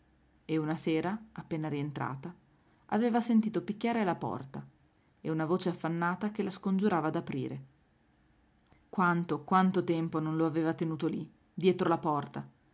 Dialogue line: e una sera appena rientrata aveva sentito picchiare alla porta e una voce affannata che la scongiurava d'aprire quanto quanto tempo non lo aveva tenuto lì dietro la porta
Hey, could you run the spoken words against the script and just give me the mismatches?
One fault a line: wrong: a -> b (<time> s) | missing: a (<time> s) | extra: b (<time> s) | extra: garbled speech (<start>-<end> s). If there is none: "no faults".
no faults